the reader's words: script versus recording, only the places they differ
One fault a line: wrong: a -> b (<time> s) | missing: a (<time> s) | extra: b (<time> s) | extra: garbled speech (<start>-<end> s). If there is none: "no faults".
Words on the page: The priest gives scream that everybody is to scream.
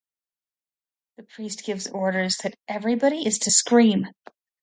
wrong: scream -> orders (1.9 s)